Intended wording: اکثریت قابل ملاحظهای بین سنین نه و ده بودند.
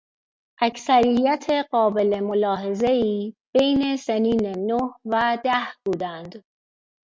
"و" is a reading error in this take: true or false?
false